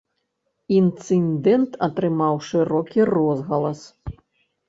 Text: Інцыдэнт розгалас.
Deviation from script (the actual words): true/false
true